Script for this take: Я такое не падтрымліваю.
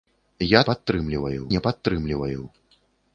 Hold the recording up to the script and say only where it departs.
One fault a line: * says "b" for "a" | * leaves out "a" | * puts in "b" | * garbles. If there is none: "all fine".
* says "падтрымліваю" for "такое"